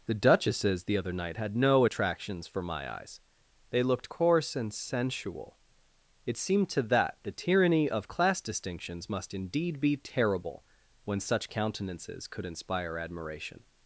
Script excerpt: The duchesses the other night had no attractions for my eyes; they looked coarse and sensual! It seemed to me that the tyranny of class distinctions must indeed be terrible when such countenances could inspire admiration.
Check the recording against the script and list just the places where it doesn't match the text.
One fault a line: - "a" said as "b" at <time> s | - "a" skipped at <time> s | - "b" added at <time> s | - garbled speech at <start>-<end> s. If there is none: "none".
- "me" skipped at 6.8 s